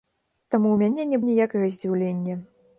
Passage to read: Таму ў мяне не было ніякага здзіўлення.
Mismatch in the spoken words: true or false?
true